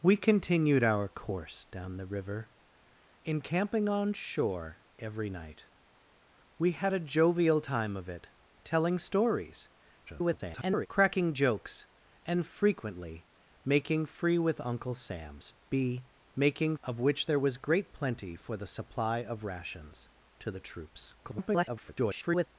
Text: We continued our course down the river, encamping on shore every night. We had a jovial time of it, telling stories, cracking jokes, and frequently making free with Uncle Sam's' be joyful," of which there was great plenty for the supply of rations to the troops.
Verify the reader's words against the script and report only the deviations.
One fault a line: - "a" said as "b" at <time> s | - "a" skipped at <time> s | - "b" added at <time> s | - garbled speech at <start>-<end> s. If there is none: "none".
- garbled speech at 10.1-10.9 s
- "joyful" said as "making" at 16.3 s
- garbled speech at 21.2-22.5 s